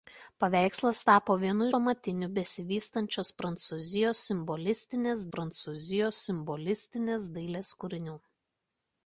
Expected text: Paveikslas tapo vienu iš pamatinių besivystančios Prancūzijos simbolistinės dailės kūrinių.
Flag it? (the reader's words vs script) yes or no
yes